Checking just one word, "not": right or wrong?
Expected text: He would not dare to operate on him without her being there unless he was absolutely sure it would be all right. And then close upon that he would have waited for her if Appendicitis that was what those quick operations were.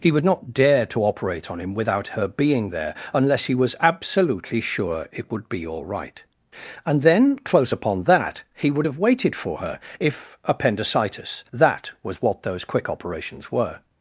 right